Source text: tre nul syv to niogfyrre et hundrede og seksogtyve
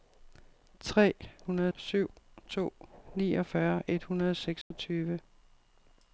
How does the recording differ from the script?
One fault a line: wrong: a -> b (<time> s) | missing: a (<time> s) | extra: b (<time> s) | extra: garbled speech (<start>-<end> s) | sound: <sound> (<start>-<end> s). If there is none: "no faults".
wrong: nul -> hundrede (1.4 s)
sound: dropout (4.6-4.7 s)